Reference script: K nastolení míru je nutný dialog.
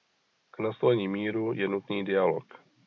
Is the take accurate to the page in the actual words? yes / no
yes